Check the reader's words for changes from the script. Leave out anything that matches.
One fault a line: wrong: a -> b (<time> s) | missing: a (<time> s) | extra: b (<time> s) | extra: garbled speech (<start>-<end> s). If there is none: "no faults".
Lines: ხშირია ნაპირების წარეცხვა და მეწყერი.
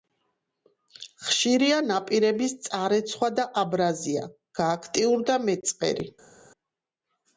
extra: აბრაზია გააქტიურდა (3.7 s)